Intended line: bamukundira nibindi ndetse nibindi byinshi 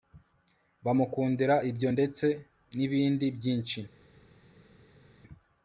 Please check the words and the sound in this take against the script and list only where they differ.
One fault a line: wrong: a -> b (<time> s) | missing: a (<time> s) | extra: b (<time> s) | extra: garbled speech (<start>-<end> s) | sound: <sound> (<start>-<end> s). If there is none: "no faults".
wrong: nibindi -> ibyo (1.7 s)